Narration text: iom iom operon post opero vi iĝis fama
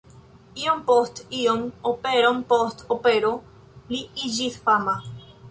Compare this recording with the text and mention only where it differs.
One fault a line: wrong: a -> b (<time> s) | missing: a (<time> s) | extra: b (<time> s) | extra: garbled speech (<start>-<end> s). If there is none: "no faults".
extra: post (0.9 s)
wrong: vi -> li (3.9 s)